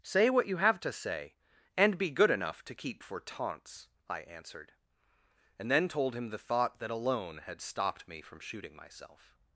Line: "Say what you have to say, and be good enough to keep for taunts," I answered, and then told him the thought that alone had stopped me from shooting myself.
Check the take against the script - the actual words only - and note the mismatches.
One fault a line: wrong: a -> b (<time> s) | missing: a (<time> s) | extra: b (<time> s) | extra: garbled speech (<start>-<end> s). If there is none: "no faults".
no faults